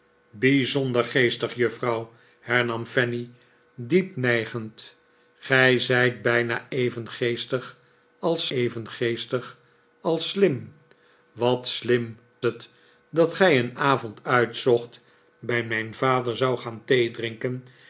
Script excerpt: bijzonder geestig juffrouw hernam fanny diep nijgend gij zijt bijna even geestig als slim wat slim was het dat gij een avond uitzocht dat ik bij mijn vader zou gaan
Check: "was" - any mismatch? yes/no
yes